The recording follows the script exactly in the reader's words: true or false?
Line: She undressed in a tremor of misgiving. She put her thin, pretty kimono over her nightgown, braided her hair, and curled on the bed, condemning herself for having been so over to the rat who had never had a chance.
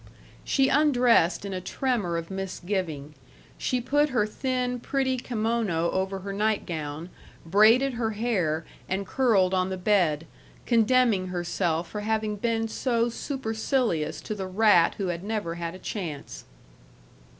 false